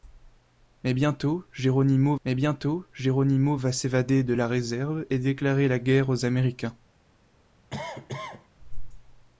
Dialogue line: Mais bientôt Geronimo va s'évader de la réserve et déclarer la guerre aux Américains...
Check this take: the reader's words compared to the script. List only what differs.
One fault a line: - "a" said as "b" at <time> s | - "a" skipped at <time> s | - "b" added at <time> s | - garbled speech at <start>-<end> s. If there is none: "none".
- "mais bientôt Geronimo" added at 2.2 s